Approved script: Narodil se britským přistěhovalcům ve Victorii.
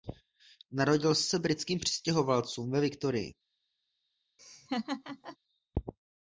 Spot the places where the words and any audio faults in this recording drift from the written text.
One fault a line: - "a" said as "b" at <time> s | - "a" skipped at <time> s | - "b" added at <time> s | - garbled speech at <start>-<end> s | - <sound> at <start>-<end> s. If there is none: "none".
- laugh at 4.4-5.4 s